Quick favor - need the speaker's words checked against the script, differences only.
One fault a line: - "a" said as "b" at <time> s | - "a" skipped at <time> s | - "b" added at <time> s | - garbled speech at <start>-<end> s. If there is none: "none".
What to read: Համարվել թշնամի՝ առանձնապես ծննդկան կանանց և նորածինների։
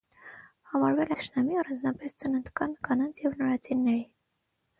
none